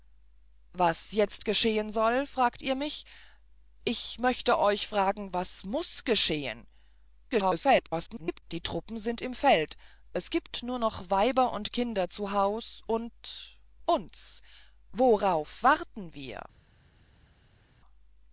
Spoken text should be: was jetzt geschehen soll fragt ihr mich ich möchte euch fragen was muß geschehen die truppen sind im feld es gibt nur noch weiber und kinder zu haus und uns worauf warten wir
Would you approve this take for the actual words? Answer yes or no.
no